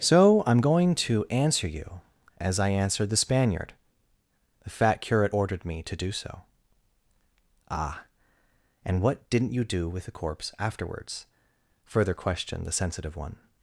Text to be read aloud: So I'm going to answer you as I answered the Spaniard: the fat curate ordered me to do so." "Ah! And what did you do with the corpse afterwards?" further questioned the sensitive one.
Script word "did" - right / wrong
wrong